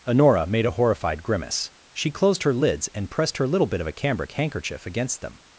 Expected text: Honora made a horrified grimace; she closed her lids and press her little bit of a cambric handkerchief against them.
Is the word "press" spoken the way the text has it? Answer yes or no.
no